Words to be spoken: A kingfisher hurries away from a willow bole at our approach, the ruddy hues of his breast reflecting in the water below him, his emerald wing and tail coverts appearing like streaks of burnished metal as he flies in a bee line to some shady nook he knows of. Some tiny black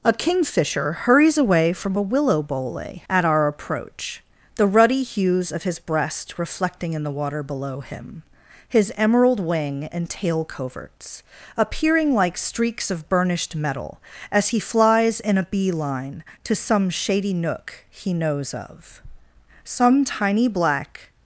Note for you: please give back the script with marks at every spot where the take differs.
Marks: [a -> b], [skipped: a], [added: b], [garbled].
A kingfisher hurries away from a willow bole at our approach, the ruddy hues of his breast reflecting in the water below him, his emerald wing and tail coverts appearing like streaks of burnished metal as he flies in a bee line to some shady nook he knows of. Some tiny black